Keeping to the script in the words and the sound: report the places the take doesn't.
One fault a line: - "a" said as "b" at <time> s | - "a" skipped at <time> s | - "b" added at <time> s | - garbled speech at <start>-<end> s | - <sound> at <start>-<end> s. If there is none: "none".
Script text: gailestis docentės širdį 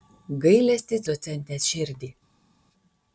none